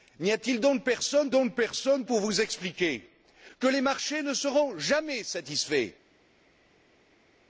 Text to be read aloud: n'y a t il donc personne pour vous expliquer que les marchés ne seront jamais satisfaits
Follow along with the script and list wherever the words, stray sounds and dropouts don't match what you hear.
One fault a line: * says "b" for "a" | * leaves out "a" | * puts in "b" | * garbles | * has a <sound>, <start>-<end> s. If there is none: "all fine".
* puts in "donc personne"